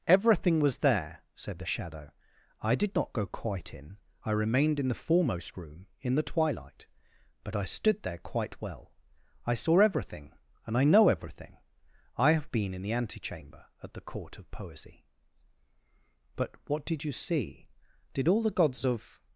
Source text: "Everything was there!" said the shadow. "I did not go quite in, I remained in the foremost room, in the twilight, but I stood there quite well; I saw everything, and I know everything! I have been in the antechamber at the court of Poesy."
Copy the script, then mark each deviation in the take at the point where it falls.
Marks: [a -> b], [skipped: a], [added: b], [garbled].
"Everything was there!" said the shadow. "I did not go quite in, I remained in the foremost room, in the twilight, but I stood there quite well; I saw everything, and I know everything! I have been in the antechamber at the court of Poesy." [added: But WHAT DID you see Did all the gods of]